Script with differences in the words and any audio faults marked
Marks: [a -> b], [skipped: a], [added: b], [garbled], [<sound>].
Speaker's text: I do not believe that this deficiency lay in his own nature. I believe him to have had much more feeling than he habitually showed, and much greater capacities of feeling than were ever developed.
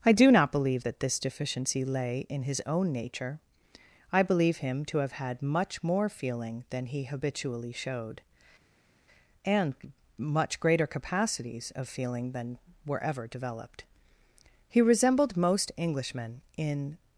I do not believe that this deficiency lay in his own nature. I believe him to have had much more feeling than he habitually showed, and much greater capacities of feeling than were ever developed. [added: He resembled most Englishmen in]